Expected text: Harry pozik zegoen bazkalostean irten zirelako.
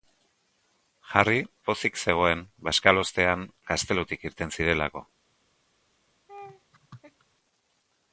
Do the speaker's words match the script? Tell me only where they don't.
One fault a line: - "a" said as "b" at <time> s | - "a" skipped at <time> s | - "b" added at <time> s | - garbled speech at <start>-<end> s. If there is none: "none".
- "gaztelutik" added at 3.7 s